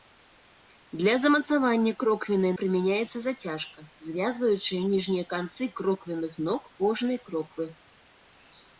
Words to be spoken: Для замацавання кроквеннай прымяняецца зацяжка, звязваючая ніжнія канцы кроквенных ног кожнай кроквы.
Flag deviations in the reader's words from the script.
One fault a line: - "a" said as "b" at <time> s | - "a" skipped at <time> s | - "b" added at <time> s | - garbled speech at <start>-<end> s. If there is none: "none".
none